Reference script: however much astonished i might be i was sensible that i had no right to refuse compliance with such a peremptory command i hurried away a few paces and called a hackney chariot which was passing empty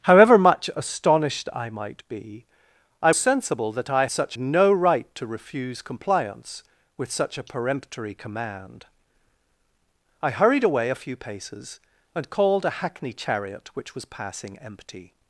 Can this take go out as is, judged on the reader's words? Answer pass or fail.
fail